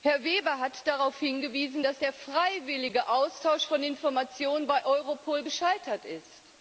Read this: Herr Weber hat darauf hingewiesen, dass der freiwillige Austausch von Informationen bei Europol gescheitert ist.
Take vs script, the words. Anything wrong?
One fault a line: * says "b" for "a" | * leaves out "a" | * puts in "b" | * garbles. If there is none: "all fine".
all fine